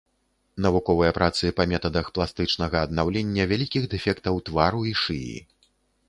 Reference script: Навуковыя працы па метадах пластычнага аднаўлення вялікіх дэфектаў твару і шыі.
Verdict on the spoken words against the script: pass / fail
pass